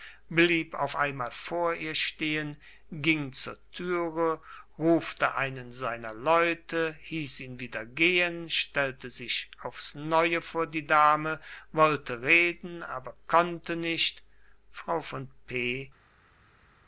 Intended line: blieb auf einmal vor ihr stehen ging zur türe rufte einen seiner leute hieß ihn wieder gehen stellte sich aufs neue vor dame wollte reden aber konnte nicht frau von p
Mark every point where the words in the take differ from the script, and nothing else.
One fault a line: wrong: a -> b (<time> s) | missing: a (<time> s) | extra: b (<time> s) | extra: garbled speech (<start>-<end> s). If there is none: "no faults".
extra: die (10.7 s)